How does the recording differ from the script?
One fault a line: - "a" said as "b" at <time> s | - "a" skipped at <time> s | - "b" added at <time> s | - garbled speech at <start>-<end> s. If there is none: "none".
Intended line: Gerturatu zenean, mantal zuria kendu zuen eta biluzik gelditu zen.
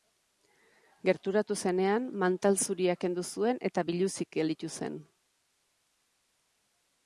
none